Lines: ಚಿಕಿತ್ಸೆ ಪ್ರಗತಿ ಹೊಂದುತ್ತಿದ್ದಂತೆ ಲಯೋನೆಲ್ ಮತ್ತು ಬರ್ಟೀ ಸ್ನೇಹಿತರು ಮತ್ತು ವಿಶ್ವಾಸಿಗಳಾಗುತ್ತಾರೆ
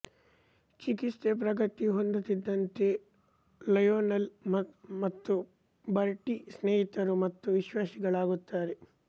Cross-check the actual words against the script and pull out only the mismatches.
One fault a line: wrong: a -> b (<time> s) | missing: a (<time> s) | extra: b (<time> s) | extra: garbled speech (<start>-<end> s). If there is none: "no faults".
no faults